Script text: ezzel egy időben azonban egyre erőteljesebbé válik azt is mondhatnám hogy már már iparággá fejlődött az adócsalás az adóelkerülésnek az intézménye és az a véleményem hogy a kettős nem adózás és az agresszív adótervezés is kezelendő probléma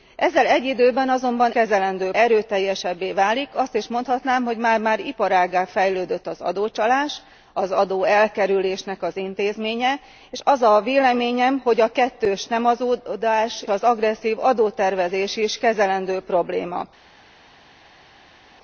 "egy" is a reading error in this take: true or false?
false